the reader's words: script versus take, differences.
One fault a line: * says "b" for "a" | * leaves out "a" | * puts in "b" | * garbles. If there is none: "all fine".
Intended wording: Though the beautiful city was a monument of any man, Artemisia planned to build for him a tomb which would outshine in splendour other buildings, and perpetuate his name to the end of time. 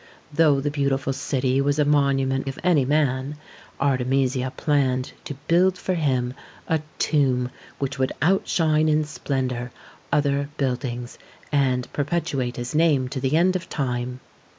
all fine